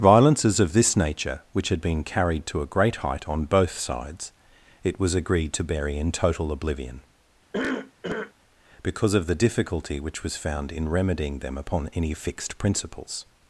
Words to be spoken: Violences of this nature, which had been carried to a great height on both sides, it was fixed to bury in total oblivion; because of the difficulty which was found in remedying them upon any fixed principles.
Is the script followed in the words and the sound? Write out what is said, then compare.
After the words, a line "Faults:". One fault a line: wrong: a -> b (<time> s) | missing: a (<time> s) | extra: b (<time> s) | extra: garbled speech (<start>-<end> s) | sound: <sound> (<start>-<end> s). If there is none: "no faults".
Violences of this nature, which had been carried to a great height on both sides, it was agreed to bury in total oblivion; because of the difficulty which was found in remedying them upon any fixed principles.
Faults:
wrong: fixed -> agreed (5.1 s)
sound: cough (7.5-8.3 s)